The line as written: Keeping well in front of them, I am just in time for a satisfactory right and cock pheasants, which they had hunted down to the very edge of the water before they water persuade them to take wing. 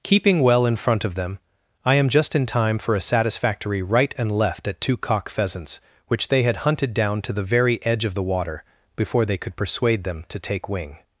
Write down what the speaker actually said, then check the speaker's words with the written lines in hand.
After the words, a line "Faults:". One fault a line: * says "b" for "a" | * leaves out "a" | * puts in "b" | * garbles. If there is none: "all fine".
Keeping well in front of them, I am just in time for a satisfactory right and left at two cock pheasants, which they had hunted down to the very edge of the water before they could persuade them to take wing.
Faults:
* puts in "left at two"
* says "could" for "water"